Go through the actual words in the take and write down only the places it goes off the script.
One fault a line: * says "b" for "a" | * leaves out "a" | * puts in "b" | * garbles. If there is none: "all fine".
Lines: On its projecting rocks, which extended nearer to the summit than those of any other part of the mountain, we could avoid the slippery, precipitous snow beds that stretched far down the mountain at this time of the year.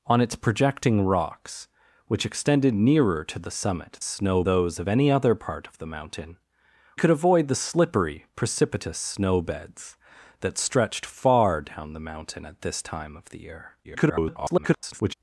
* says "snow" for "than"
* leaves out "we"
* garbles